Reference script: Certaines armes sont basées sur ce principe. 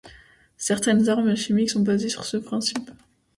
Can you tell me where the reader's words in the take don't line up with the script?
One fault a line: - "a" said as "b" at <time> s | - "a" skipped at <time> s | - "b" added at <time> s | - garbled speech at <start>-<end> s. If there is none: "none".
- "chimiques" added at 1.4 s